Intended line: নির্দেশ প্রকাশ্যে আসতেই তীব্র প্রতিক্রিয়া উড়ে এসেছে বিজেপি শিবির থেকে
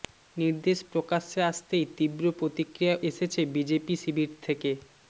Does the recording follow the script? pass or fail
fail